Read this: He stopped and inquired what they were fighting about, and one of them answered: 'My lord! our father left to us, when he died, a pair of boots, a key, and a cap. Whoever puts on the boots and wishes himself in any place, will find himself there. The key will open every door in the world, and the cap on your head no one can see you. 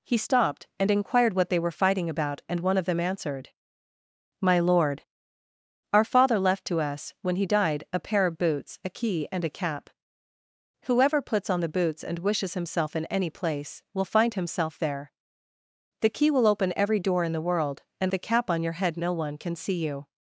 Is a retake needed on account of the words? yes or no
no